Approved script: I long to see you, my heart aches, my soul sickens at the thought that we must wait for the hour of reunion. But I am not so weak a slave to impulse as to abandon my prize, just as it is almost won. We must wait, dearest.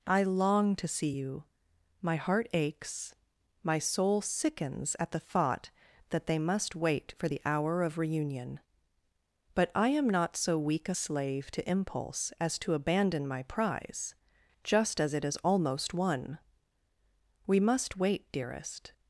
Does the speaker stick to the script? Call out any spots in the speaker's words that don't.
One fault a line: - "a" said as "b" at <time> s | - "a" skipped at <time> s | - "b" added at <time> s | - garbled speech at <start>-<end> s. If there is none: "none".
- "we" said as "they" at 6.3 s